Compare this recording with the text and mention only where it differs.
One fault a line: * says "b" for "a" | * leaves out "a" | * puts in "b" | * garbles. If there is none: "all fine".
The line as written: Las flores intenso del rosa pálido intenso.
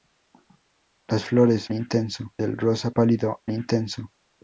all fine